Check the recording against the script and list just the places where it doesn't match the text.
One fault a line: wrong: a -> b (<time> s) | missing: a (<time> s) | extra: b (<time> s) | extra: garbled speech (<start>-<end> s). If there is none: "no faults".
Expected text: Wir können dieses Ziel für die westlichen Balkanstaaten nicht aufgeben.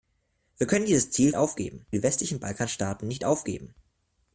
wrong: für -> aufgeben (1.3 s)